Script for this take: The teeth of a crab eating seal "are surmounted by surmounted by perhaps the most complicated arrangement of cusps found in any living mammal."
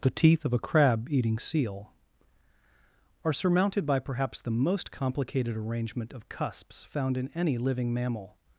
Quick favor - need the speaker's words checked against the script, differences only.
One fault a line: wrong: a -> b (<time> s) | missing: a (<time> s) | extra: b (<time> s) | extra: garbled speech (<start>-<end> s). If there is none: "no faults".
missing: surmounted by (4.0 s)